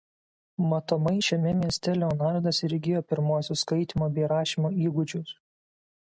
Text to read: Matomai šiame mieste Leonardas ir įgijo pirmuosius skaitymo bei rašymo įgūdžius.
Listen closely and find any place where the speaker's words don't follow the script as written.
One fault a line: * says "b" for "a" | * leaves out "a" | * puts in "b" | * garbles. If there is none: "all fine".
all fine